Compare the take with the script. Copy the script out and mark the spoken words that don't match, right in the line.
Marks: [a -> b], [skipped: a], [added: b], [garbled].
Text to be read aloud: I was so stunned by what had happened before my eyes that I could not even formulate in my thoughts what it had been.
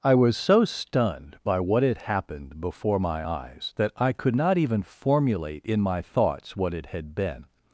I was so stunned by what had happened before my eyes that I could not even formulate in my thoughts what it had been.